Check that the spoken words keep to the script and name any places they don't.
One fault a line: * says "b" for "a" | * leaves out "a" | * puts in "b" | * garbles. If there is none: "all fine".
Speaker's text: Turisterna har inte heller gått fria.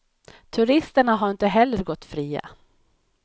all fine